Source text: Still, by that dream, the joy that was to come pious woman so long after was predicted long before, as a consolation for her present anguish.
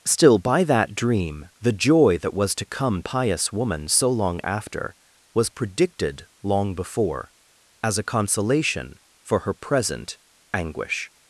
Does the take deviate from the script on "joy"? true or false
false